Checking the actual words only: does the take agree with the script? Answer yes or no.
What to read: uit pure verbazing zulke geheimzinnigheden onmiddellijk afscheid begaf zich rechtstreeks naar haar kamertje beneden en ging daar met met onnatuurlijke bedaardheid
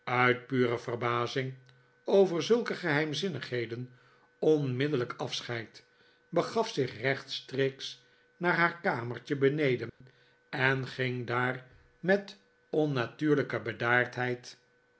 no